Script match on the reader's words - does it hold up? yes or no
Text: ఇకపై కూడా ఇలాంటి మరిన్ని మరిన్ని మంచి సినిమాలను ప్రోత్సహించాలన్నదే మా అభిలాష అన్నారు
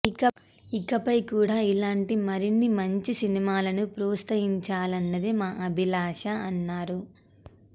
no